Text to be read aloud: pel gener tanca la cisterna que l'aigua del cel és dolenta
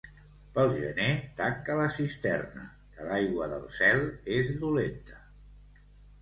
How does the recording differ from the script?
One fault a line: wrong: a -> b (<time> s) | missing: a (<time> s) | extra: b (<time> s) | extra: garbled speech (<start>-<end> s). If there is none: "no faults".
no faults